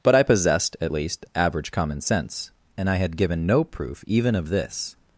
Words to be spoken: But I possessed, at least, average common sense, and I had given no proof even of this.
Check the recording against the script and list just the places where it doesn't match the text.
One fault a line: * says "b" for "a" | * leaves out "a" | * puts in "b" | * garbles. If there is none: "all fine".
all fine